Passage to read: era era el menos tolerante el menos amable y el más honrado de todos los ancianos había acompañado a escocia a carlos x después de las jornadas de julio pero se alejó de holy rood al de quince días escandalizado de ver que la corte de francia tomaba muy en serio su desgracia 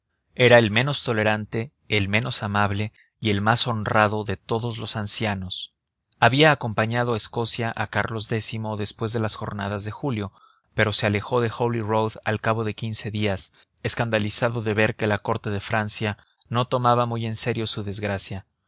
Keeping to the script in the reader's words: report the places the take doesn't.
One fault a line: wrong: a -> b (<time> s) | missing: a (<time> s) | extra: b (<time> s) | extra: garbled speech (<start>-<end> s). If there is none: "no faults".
missing: era (0.6 s)
extra: cabo (12.4 s)
extra: no (16.5 s)